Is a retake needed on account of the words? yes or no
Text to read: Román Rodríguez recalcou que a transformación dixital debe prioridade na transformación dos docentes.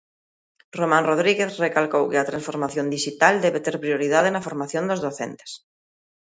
yes